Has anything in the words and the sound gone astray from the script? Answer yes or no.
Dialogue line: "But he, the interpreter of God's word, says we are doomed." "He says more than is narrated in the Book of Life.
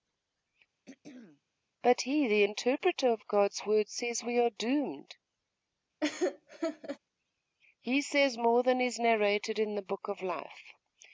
yes